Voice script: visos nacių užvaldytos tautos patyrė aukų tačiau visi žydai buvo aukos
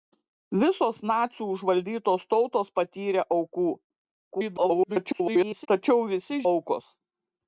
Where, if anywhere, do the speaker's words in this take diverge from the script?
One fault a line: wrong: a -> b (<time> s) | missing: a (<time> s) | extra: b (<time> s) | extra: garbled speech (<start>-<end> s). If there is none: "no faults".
extra: garbled speech (4.3-5.7 s)
missing: žydai buvo (6.4 s)